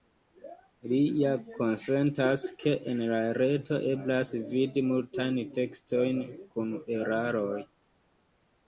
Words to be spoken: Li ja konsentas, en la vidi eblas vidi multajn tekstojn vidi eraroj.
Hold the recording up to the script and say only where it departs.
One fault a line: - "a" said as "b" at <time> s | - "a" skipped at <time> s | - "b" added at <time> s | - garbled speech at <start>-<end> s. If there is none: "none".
- "ke" added at 2.6 s
- "vidi" said as "reto" at 3.4 s
- "vidi" said as "kun" at 6.6 s